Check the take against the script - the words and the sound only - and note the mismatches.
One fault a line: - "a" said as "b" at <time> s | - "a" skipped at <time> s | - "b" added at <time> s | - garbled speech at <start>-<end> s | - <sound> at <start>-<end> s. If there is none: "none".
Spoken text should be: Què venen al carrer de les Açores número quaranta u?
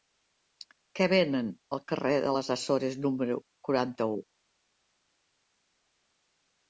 none